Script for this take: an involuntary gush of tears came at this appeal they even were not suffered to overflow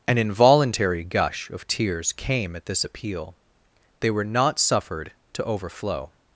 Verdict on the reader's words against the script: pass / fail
fail